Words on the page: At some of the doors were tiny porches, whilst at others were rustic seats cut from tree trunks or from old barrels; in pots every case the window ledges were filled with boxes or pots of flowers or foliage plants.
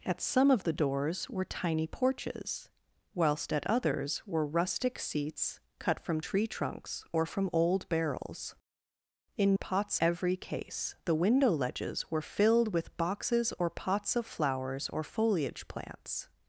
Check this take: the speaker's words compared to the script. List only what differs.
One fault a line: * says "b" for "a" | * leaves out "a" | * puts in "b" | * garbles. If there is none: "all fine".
all fine